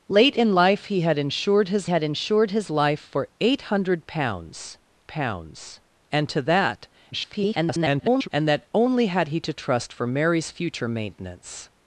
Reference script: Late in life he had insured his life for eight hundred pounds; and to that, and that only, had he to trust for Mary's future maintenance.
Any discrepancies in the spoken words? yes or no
yes